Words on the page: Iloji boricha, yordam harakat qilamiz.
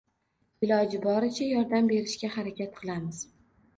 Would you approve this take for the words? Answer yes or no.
no